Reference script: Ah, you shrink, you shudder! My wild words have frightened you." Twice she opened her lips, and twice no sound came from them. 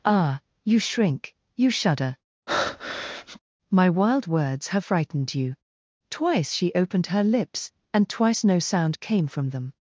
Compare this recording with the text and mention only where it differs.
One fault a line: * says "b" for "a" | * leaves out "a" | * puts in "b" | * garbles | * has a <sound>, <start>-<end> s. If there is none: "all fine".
* has a breath, 2.5-3.4 s